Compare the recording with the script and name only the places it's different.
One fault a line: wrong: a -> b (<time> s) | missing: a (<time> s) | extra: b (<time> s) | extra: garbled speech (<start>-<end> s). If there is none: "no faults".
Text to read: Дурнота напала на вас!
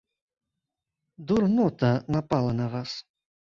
no faults